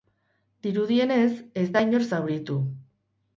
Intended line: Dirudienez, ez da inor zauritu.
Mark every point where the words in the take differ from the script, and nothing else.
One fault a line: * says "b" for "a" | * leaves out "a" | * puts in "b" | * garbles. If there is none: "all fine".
all fine